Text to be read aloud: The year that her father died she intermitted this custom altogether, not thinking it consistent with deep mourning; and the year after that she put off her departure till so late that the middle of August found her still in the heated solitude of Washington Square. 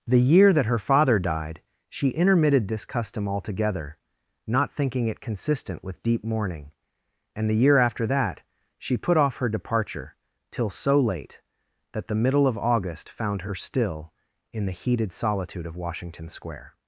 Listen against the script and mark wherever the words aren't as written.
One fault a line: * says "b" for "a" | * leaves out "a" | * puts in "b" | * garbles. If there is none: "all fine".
all fine